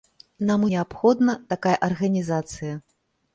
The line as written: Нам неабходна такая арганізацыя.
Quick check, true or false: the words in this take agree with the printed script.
true